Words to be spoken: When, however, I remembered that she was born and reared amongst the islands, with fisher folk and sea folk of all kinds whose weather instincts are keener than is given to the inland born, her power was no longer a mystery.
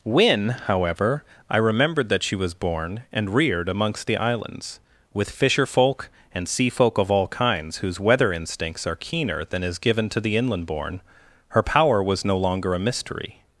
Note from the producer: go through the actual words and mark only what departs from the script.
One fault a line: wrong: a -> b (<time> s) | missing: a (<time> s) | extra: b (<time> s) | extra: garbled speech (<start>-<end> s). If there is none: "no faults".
no faults